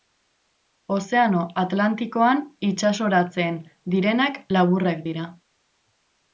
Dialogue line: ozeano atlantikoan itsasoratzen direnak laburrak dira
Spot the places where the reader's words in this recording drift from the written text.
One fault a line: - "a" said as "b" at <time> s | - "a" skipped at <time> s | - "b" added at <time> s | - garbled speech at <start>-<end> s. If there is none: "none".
none